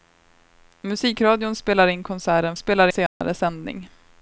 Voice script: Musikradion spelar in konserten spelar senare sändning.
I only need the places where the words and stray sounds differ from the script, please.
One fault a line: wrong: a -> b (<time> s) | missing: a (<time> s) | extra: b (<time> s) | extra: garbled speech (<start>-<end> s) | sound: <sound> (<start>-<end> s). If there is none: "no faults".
sound: dropout (3.1-3.2 s)